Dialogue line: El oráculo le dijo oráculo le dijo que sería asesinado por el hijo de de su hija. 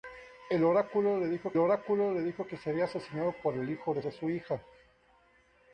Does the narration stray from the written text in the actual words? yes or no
no